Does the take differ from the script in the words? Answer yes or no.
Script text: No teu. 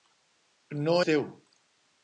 no